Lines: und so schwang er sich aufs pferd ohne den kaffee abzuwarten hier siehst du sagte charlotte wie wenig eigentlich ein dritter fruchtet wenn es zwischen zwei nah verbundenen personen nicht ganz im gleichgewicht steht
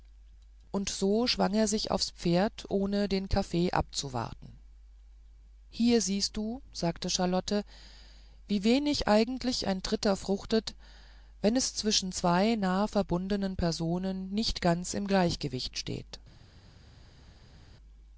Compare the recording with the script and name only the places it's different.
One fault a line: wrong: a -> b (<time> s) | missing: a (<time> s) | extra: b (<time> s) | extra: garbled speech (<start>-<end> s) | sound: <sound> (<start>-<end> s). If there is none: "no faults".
no faults